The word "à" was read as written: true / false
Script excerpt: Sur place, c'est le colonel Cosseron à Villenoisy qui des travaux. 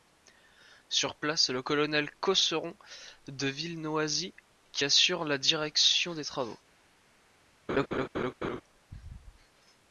false